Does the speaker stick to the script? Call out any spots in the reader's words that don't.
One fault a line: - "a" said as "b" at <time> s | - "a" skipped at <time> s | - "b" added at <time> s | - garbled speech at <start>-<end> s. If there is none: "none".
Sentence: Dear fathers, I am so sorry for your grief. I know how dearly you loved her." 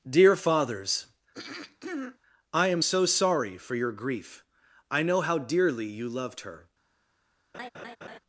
none